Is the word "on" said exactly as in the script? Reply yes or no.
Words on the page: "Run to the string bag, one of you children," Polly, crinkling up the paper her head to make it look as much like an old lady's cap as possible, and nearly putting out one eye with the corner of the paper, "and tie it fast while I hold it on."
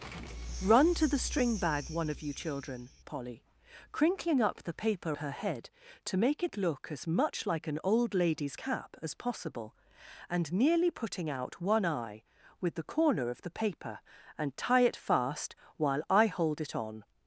yes